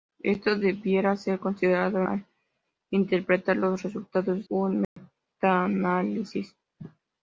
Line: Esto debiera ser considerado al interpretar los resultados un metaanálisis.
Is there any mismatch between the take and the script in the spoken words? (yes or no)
no